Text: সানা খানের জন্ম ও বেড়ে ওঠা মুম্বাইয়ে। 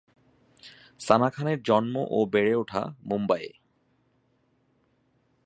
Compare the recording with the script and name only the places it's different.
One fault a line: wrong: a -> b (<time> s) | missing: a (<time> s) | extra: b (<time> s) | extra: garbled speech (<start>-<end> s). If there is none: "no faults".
no faults